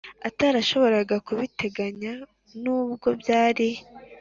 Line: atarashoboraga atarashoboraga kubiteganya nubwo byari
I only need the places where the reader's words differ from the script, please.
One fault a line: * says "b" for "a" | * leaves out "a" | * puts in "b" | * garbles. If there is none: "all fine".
* leaves out "atarashoboraga"